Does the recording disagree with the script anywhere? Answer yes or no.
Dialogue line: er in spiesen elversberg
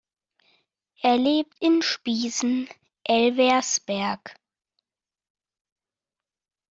yes